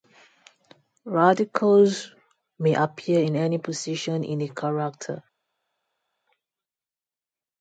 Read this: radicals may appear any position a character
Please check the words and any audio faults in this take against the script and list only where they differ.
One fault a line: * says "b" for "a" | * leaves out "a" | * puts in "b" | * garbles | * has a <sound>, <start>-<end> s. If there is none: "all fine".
* puts in "in"
* puts in "in"